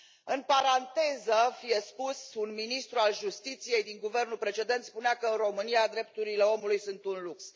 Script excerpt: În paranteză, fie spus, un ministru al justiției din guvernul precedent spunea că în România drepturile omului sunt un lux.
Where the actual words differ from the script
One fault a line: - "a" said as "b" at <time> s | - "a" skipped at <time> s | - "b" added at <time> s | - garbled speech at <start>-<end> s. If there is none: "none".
none